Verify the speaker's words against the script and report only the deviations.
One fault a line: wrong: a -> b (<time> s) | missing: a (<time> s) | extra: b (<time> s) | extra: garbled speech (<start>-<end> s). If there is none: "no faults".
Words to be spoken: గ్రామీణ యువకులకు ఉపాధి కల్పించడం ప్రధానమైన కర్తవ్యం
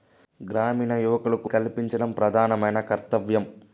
missing: ఉపాధి (1.5 s)